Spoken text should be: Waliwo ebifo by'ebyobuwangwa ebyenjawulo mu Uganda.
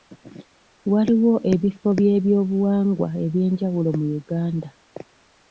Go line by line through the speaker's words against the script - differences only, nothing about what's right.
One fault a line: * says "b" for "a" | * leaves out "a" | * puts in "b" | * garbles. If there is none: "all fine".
all fine